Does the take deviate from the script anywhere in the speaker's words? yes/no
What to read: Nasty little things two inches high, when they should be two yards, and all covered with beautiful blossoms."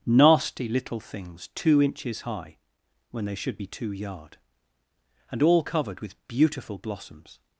yes